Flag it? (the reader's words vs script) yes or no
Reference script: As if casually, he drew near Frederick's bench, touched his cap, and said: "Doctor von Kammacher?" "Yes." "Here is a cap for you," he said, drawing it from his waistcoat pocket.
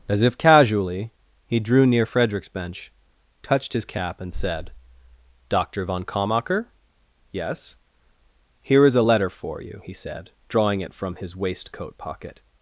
yes